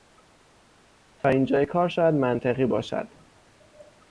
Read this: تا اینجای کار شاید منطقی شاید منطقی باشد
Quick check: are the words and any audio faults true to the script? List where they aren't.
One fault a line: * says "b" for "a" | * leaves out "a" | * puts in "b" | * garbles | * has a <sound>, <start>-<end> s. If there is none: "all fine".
* leaves out "شاید منطقی"